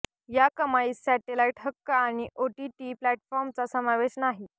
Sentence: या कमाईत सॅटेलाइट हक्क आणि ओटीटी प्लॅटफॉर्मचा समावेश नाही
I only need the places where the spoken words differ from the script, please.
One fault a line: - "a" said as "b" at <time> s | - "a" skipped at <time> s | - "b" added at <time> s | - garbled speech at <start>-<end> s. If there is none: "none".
none